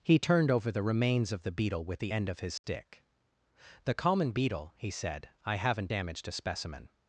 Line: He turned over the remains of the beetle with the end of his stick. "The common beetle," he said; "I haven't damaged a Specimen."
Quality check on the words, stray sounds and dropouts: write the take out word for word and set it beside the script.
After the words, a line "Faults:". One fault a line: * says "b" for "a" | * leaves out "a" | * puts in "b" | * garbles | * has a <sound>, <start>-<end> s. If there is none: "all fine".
He turned over the remains of the beetle with the end of his stick. "The common beetle," he said; "I haven't damaged a Specimen."
Faults:
* has a dropout, 2.6-2.6 s